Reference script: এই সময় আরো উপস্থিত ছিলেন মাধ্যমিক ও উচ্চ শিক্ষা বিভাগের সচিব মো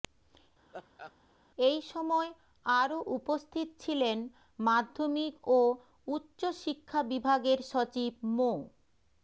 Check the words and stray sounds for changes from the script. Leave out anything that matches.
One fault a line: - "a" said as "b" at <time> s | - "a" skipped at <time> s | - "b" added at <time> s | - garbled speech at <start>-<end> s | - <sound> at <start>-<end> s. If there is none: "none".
- laugh at 0.7-1.1 s